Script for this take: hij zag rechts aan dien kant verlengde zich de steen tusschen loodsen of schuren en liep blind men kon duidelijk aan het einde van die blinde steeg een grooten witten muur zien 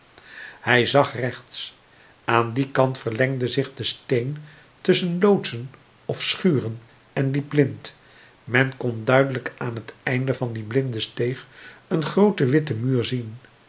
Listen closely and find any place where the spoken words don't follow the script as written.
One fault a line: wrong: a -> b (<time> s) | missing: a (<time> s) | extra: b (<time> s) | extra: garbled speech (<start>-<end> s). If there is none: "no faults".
no faults